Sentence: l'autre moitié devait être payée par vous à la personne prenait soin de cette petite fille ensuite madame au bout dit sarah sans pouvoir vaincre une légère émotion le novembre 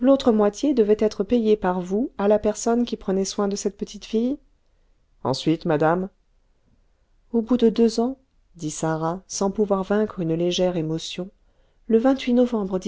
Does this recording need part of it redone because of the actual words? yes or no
yes